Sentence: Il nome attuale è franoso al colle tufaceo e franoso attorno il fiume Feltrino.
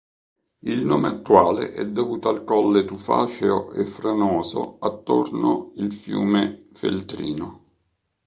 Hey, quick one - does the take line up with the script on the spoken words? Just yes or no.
no